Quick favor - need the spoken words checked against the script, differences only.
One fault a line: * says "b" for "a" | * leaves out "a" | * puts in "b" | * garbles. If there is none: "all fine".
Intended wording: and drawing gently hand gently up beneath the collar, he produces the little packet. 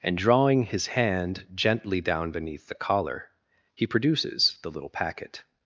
* says "his" for "gently"
* says "down" for "up"